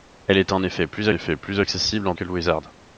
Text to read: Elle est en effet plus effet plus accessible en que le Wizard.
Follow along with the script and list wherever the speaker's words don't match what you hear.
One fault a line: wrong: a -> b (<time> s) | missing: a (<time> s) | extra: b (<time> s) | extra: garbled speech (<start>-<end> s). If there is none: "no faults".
no faults